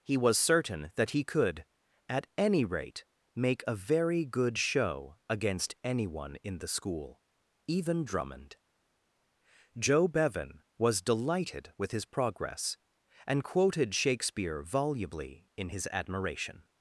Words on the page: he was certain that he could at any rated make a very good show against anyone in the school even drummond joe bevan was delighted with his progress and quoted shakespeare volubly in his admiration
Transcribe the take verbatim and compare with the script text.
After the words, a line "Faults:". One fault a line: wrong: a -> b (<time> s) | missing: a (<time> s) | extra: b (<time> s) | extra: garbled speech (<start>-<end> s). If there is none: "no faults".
he was certain that he could at any rate make a very good show against anyone in the school even drummond joe bevan was delighted with his progress and quoted shakespeare volubly in his admiration
Faults:
wrong: rated -> rate (2.6 s)